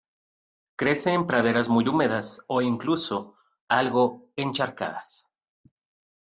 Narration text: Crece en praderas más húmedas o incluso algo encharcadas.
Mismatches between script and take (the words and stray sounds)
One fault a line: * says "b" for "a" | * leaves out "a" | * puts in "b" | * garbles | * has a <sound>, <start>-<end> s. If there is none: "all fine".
* says "muy" for "más"